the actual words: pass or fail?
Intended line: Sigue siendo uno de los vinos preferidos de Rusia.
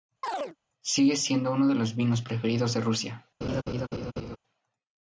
pass